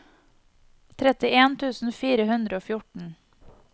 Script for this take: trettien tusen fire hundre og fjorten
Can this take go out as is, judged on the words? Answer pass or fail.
pass